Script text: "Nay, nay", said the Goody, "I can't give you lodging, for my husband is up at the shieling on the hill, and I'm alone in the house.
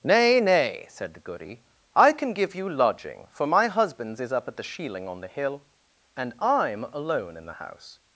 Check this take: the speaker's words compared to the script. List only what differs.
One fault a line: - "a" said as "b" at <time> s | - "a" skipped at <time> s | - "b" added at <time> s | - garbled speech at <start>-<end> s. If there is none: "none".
- "can't" said as "can" at 2.1 s
- "husband" said as "husbands" at 3.7 s